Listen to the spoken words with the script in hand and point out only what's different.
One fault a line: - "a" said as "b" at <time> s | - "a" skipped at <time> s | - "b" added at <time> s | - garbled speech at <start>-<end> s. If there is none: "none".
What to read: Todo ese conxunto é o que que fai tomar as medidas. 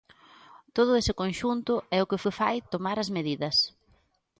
none